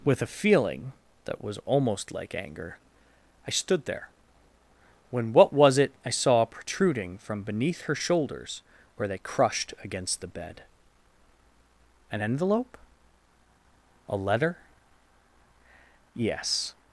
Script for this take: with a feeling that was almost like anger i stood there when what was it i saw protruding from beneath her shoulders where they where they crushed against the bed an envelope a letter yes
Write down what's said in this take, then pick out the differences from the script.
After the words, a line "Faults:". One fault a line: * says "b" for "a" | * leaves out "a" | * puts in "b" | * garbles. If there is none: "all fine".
with a feeling that was almost like anger i stood there when what was it i saw protruding from beneath her shoulders where they crushed against the bed an envelope a letter yes
Faults:
* leaves out "where they"